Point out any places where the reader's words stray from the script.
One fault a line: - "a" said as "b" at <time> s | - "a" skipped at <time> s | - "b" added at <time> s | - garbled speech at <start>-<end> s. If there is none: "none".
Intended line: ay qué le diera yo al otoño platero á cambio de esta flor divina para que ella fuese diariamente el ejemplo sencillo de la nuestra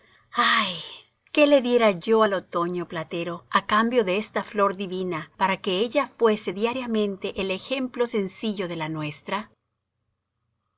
none